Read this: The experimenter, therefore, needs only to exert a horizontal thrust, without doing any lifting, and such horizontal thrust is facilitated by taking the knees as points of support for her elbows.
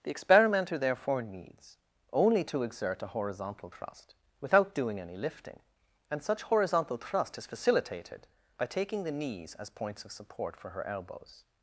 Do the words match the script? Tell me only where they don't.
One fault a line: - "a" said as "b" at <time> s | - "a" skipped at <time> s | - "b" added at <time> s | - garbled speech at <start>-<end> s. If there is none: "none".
none